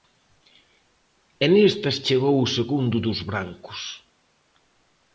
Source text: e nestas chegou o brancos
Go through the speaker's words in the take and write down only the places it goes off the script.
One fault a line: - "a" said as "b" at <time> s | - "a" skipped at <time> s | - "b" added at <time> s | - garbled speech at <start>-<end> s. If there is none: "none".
- "segundo dos" added at 2.6 s